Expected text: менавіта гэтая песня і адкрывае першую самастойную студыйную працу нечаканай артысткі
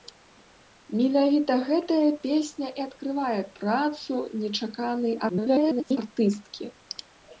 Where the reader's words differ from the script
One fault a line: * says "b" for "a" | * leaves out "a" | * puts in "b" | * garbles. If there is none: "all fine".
* leaves out "першую самастойную студыйную"
* garbles